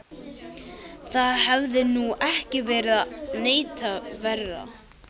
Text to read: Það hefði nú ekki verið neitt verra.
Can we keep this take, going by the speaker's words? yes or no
yes